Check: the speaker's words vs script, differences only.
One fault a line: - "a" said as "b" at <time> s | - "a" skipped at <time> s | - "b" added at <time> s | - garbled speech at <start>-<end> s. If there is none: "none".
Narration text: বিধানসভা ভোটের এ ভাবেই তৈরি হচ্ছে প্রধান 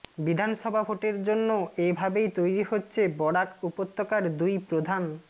- "জন্য" added at 1.2 s
- "বরাক উপত্যকার দুই" added at 3.2 s